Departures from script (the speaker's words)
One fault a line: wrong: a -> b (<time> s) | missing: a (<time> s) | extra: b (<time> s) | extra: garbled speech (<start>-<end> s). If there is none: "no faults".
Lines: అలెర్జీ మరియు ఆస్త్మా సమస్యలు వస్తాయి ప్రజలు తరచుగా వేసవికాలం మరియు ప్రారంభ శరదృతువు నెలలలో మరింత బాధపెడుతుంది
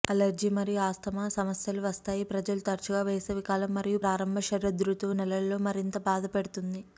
no faults